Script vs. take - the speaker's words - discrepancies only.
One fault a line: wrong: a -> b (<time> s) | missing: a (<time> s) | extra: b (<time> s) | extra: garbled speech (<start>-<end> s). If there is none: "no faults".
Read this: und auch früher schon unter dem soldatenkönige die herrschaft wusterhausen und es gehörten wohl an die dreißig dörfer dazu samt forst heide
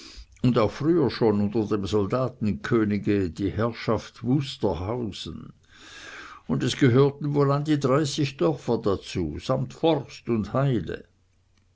extra: und (10.3 s)